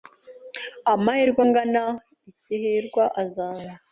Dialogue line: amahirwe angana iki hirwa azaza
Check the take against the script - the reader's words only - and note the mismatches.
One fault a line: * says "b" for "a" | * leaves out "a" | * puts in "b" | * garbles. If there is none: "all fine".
all fine